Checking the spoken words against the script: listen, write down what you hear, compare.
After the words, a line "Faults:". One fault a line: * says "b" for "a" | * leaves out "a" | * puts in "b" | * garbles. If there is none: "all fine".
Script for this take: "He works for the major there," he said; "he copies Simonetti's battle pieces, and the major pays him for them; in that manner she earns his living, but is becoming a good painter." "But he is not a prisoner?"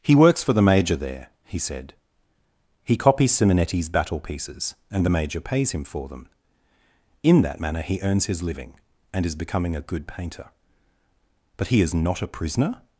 "He works for the major there," he said; "he copies Simonetti's battle pieces, and the major pays him for them; in that manner he earns his living, and is becoming a good painter." "But he is not a prisoner?"
Faults:
* says "he" for "she"
* says "and" for "but"